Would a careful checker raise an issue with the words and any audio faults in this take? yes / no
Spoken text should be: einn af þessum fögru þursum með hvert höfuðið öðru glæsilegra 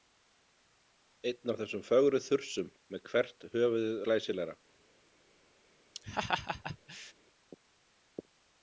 yes